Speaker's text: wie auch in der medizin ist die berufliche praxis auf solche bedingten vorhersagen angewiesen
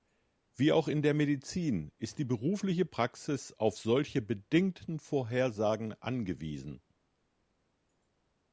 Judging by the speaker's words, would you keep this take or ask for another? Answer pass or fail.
pass